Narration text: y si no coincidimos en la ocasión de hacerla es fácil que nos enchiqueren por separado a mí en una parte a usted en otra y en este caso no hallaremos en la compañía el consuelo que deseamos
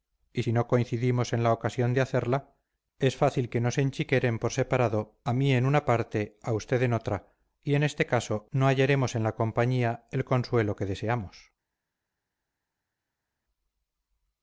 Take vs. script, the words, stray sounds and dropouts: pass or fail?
pass